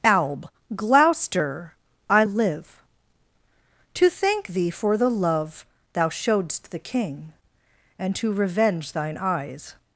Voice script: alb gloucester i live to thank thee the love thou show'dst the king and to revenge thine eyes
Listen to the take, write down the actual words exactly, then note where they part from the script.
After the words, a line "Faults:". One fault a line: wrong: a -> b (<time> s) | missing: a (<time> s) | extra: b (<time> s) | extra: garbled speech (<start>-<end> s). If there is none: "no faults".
alb gloucester i live to thank thee for the love thou show'dst the king and to revenge thine eyes
Faults:
extra: for (4.7 s)